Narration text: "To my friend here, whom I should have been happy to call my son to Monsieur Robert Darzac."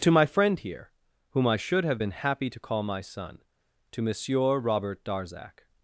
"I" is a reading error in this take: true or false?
false